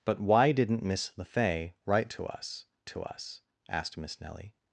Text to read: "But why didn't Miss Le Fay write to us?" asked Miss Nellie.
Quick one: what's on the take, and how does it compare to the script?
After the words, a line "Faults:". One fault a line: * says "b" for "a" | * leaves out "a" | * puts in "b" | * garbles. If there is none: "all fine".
"But why didn't Miss Le Fay write to us to us?" asked Miss Nellie.
Faults:
* puts in "to us"